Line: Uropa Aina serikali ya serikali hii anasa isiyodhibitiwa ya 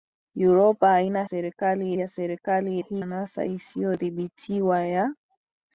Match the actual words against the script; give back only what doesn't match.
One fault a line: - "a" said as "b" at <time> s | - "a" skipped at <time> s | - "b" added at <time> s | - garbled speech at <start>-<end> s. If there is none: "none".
none